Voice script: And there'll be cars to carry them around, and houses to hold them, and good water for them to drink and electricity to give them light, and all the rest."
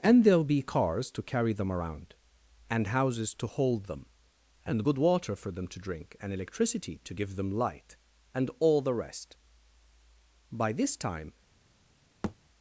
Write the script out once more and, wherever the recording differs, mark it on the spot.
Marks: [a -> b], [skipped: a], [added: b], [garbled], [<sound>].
And there'll be cars to carry them around, and houses to hold them, and good water for them to drink and electricity to give them light, and all the rest." [added: By this time] [thud]